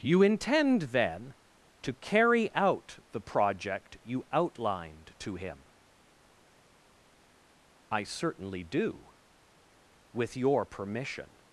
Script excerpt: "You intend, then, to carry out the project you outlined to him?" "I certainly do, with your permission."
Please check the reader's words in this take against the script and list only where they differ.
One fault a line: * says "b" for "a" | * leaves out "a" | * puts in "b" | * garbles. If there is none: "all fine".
all fine